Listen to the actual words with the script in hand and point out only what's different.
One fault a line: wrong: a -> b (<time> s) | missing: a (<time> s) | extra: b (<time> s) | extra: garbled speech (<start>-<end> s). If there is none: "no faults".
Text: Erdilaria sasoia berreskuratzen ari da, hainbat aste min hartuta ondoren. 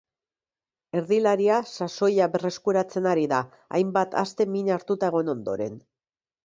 extra: egon (5.1 s)